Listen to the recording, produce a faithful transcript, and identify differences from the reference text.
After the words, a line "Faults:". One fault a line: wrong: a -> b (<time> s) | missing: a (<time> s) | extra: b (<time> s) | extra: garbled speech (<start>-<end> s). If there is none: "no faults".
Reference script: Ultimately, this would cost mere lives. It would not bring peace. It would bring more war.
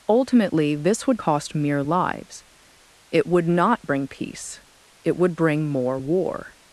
Ultimately, this would cost mere lives. It would not bring peace. It would bring more war.
Faults:
no faults